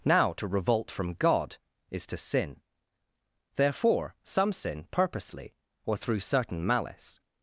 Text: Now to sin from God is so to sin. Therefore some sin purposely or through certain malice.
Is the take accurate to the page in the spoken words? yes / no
no